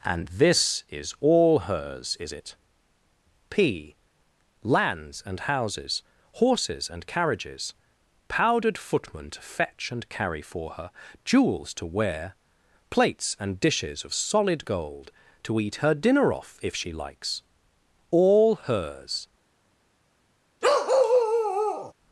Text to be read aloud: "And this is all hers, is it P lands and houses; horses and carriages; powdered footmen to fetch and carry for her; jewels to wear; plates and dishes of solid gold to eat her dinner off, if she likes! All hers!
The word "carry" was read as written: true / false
true